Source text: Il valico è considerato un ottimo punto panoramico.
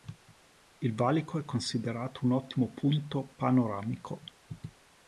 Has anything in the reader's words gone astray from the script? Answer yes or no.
no